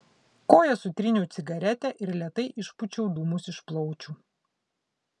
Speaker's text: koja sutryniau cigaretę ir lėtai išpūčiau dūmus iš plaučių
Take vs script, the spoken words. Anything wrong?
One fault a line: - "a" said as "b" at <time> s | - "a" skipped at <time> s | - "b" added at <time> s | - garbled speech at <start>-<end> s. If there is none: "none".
none